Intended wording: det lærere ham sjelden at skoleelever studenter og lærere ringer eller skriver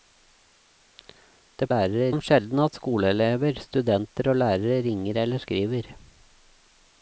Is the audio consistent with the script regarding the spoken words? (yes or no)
yes